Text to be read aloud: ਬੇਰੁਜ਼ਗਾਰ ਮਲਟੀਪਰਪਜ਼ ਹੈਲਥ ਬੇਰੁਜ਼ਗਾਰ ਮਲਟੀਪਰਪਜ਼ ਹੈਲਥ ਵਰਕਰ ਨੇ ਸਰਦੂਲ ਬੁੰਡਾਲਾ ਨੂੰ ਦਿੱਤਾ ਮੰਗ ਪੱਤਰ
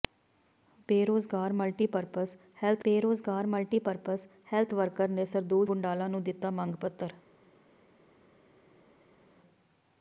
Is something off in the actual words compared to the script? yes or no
no